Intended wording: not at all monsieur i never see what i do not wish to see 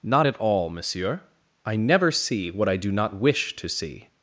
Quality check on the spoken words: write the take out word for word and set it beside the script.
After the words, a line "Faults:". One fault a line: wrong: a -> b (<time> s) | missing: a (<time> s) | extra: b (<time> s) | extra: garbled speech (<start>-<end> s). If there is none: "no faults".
not at all monsieur i never see what i do not wish to see
Faults:
no faults